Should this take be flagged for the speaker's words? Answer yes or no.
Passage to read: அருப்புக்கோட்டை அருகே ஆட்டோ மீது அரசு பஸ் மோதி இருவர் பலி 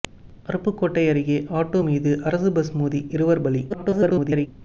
yes